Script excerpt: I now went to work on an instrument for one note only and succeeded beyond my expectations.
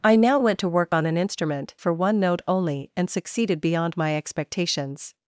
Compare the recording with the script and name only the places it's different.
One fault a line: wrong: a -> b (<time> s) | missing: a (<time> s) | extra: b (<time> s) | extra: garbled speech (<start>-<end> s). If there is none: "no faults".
no faults